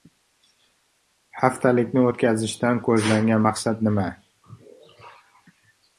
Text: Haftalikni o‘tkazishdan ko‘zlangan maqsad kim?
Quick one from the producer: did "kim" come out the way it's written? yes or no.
no